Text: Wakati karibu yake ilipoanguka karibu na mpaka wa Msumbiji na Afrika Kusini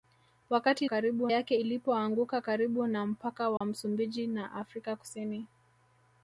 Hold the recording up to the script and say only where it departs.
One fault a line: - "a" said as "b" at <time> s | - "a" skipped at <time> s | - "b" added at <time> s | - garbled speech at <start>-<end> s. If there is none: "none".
none